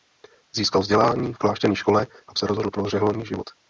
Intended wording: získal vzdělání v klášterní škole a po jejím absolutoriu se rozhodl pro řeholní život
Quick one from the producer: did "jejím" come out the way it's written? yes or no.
no